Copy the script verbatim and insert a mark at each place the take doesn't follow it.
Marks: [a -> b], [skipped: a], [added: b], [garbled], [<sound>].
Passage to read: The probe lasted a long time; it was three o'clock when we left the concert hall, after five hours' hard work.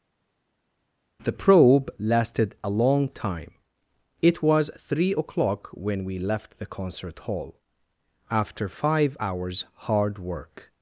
The probe lasted a long time; it was three o'clock when we left the concert hall, after five hours' hard work.